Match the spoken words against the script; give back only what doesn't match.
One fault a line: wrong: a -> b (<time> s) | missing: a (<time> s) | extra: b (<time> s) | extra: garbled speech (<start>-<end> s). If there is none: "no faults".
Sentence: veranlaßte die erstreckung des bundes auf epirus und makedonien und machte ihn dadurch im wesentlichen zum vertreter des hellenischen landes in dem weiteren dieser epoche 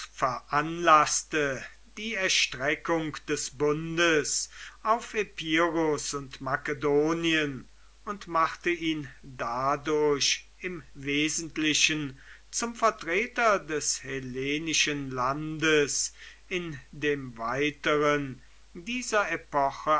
no faults